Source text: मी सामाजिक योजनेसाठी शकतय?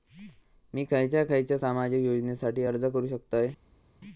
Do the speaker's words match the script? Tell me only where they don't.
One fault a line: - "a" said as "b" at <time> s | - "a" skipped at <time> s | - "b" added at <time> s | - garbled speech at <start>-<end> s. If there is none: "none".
- "खयच्या खयच्या" added at 0.8 s
- "अर्ज करू" added at 2.6 s